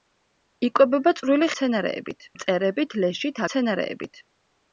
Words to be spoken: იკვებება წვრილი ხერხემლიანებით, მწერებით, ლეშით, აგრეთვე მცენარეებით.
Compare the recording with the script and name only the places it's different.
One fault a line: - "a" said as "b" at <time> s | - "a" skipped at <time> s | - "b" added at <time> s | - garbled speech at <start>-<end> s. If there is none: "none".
- "ხერხემლიანებით" said as "მცენარეებით" at 1.5 s
- "აგრეთვე" skipped at 3.4 s